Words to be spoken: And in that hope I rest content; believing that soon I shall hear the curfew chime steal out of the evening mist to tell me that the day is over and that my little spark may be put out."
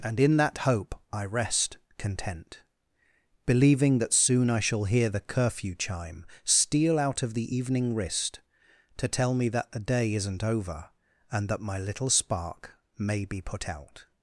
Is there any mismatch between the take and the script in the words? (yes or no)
yes